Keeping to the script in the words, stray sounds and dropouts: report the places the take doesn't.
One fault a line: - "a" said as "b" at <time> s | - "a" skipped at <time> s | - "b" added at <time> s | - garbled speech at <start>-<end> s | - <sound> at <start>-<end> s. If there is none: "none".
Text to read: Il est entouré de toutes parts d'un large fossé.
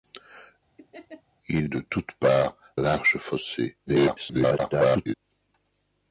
- laugh at 0.8-1.2 s
- "est entouré" skipped at 1.7 s
- "d'un" skipped at 2.6 s
- garbled speech at 3.9-5.1 s